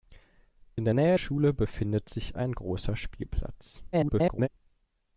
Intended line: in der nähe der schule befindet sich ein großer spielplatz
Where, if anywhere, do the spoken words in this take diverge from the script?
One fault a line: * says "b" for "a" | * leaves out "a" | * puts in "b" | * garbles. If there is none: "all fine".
* leaves out "der"
* garbles